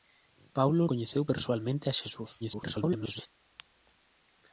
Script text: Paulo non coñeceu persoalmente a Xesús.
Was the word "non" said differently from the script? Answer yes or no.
yes